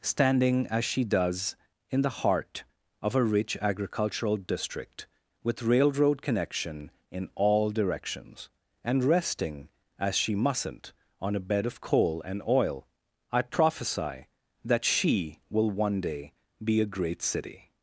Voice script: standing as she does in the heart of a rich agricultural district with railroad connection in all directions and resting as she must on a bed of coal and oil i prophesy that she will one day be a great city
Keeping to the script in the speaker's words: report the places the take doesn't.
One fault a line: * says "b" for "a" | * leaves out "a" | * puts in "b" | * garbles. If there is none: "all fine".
* says "mustn't" for "must"